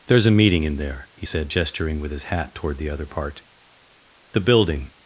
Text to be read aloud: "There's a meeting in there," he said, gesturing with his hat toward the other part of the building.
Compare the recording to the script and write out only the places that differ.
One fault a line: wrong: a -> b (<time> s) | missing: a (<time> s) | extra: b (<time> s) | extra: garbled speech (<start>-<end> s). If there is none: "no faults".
missing: of (3.4 s)